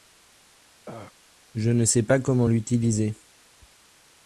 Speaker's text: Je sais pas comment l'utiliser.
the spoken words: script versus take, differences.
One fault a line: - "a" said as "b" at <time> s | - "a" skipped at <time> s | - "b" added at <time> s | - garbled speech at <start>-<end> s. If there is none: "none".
- "ne" added at 1.7 s